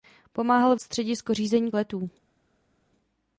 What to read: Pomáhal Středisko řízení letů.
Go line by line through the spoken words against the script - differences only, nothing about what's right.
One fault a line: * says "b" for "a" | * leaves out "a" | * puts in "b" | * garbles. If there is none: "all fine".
all fine